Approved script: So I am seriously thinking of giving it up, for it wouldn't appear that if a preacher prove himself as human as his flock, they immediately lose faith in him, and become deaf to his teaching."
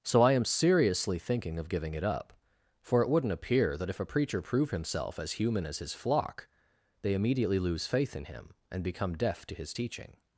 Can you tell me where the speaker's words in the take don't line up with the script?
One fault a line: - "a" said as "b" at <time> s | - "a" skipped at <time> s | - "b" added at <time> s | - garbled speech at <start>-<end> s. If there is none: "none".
none